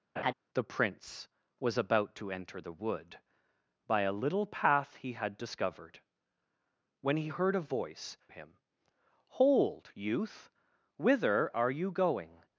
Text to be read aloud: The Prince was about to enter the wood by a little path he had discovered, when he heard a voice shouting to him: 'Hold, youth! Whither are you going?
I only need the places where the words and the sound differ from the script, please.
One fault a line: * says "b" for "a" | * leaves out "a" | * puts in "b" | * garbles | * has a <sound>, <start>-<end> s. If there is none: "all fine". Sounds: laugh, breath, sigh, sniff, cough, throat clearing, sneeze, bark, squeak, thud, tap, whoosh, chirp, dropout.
* has a laugh, 0.2-0.3 s
* leaves out "shouting to"